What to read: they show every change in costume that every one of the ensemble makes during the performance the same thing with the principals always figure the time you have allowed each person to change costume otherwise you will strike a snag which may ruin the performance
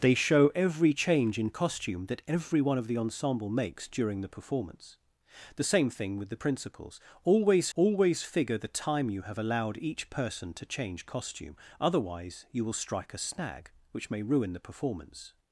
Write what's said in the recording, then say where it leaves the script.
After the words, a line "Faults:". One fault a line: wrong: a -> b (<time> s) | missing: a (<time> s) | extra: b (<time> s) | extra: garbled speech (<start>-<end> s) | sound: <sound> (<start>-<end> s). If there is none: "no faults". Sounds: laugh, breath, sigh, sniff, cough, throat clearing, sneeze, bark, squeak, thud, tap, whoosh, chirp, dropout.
they show every change in costume that every one of the ensemble makes during the performance the same thing with the principals always always figure the time you have allowed each person to change costume otherwise you will strike a snag which may ruin the performance
Faults:
extra: always (7.7 s)